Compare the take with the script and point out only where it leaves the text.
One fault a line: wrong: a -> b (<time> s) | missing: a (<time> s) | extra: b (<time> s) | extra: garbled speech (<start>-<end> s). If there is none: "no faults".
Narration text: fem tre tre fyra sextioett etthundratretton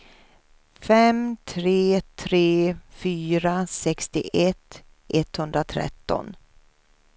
no faults